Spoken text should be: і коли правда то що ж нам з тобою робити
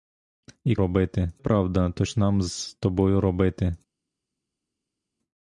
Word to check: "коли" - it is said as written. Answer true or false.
false